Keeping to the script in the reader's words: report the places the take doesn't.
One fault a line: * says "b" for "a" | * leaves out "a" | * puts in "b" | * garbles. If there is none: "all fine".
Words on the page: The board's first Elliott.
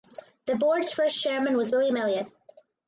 * puts in "chairman was William"